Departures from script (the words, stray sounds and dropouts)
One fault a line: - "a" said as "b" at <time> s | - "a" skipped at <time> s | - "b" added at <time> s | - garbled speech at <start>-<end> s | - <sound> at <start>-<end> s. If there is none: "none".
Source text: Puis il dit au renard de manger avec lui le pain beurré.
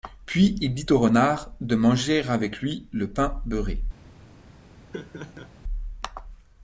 - laugh at 4.9-5.5 s